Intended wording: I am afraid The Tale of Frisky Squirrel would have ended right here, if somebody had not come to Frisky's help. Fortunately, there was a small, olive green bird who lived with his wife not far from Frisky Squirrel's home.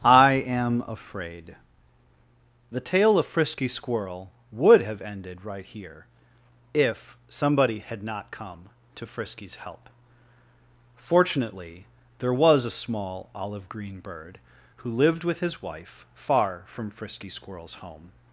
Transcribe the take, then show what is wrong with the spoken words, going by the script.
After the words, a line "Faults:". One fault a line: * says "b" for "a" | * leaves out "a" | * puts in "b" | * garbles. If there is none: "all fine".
I am afraid The Tale of Frisky Squirrel would have ended right here, if somebody had not come to Frisky's help. Fortunately, there was a small, olive green bird who lived with his wife far from Frisky Squirrel's home.
Faults:
* leaves out "not"